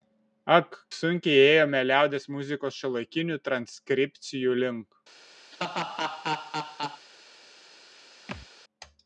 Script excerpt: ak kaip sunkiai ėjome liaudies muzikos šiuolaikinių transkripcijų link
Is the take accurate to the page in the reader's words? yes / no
no